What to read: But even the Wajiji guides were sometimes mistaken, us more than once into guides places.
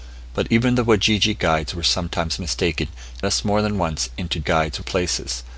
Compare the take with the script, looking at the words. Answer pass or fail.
pass